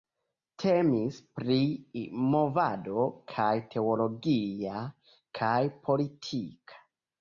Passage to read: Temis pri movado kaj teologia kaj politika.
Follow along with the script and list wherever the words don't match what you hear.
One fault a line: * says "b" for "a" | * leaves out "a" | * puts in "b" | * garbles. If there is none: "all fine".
all fine